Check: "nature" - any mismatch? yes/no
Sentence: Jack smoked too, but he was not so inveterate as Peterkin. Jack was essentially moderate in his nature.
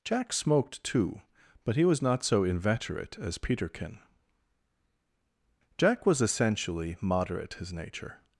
no